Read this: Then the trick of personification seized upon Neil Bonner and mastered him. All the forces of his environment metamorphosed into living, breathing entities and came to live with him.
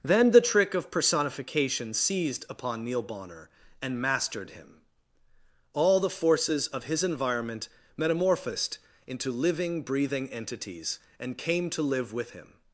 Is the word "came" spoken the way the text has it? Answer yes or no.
yes